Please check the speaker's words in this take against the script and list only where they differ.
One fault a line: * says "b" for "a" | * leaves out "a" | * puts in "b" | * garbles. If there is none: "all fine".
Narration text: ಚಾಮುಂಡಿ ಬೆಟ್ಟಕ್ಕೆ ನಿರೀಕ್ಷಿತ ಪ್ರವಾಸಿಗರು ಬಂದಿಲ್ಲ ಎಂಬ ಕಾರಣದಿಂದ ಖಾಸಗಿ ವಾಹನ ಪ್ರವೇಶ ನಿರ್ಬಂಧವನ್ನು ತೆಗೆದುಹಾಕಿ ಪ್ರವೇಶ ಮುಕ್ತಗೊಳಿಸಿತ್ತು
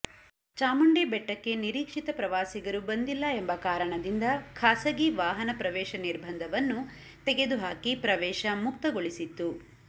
all fine